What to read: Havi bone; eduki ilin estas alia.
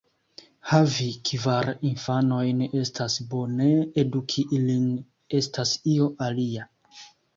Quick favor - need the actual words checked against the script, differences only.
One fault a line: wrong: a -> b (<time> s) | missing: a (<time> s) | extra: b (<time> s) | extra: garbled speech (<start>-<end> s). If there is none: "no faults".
extra: kvar infanojn estas (1.3 s)
extra: io (6.0 s)